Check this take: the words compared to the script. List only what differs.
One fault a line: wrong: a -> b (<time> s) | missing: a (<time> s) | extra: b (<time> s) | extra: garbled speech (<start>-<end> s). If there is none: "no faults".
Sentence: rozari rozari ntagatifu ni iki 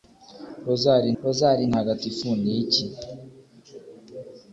no faults